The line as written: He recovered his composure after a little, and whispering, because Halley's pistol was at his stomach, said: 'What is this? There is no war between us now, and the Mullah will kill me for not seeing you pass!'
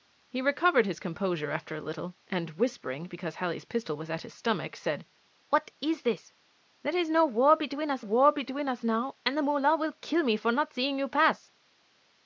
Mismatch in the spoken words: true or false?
true